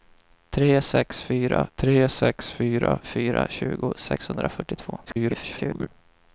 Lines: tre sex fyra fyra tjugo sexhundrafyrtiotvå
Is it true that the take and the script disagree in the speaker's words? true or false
true